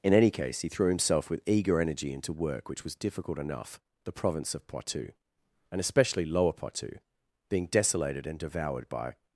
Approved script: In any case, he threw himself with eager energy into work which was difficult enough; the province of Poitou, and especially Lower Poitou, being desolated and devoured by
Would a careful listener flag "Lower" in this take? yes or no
no